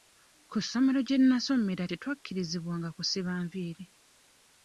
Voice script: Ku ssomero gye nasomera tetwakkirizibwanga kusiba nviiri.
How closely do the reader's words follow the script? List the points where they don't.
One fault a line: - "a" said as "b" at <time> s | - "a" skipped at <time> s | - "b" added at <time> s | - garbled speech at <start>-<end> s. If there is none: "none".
none